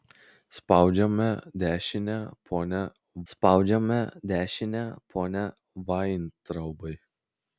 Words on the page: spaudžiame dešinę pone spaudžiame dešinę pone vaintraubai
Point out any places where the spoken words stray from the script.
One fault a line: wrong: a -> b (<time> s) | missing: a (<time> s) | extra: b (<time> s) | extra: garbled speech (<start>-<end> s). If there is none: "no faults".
no faults